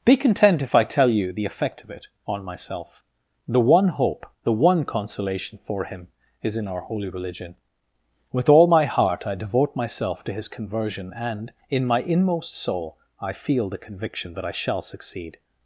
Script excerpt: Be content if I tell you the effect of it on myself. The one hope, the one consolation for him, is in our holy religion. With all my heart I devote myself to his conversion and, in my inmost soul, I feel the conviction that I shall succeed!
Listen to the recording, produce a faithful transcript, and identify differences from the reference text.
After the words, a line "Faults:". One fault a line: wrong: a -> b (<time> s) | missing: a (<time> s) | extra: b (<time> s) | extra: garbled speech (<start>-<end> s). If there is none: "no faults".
Be content if I tell you the effect of it on myself. The one hope, the one consolation for him, is in our holy religion. With all my heart I devote myself to his conversion and, in my inmost soul, I feel the conviction that I shall succeed!
Faults:
no faults